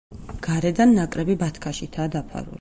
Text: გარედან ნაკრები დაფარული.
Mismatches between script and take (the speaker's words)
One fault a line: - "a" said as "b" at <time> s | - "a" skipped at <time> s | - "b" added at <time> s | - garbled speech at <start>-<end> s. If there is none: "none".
- "ბათქაშითაა" added at 1.4 s